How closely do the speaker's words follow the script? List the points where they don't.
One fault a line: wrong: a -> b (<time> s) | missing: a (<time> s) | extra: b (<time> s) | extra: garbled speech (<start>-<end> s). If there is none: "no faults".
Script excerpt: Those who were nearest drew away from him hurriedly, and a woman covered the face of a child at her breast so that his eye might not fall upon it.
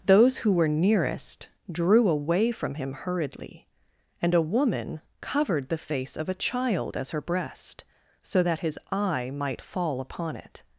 wrong: at -> as (7.0 s)
missing: not (9.6 s)